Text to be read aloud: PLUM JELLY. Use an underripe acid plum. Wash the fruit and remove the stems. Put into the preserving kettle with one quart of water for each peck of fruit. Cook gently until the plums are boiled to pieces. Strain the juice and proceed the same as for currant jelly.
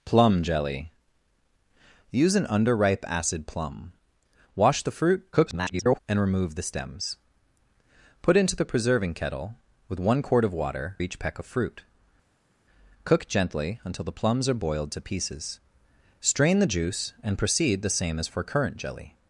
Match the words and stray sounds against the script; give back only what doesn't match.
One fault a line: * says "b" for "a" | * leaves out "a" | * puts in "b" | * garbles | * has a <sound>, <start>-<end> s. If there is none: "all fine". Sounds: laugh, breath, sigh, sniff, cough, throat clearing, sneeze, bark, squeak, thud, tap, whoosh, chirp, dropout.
* garbles
* leaves out "for"